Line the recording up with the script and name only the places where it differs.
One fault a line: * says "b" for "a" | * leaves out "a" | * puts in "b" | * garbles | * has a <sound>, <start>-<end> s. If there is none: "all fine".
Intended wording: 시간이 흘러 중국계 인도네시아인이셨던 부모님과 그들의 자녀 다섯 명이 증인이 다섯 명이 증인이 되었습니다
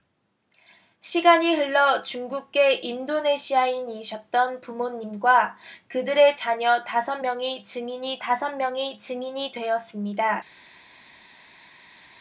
all fine